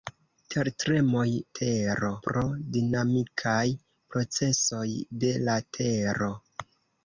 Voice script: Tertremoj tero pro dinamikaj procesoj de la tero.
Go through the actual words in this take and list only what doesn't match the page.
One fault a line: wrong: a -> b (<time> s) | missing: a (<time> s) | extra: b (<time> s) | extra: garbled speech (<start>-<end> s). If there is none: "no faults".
no faults